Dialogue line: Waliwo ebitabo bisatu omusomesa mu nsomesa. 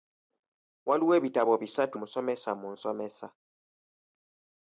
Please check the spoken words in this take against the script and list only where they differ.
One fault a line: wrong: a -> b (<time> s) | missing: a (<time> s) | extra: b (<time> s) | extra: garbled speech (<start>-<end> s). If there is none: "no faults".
no faults